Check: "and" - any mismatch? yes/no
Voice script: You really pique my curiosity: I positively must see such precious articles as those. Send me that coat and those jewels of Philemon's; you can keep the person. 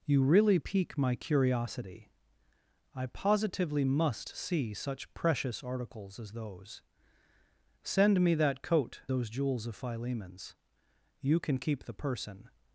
yes